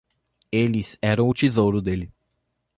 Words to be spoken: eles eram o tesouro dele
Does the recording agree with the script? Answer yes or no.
yes